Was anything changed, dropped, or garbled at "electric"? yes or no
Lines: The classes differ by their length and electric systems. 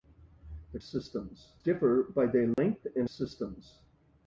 yes